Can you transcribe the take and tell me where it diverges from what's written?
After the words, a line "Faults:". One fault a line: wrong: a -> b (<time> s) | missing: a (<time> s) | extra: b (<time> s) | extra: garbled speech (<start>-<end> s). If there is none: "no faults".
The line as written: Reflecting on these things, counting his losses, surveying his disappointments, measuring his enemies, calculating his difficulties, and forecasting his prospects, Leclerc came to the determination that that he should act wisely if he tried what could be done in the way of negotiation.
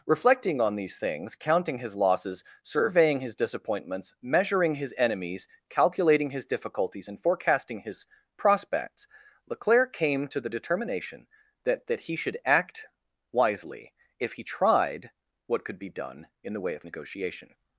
Reflecting on these things, counting his losses, surveying his disappointments, measuring his enemies, calculating his difficulties, and forecasting his prospects, Leclerc came to the determination that that he should act wisely if he tried what could be done in the way of negotiation.
Faults:
no faults